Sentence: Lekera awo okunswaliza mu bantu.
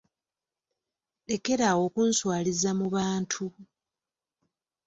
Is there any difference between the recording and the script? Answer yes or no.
no